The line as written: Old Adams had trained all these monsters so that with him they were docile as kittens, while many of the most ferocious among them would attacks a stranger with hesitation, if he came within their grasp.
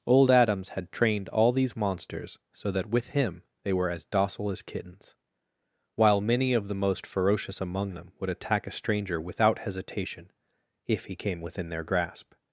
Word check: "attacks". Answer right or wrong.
wrong